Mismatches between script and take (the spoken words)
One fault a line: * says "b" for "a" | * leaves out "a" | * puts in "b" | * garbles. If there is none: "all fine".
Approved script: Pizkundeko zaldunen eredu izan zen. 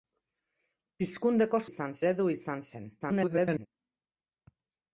* says "izan" for "zaldunen"
* garbles